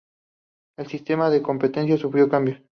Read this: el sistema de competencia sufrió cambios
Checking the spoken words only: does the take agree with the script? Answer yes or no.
yes